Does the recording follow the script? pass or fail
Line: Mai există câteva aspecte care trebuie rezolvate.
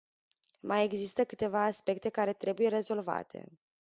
pass